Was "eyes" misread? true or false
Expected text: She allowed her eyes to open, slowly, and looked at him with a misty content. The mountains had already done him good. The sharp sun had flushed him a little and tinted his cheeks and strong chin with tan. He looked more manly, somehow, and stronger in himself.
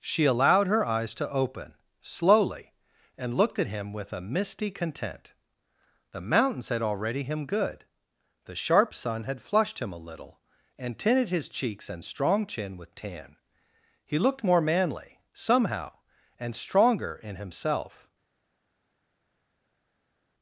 false